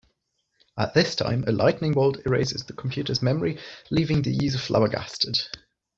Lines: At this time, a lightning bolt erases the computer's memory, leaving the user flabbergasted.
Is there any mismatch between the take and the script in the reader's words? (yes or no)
no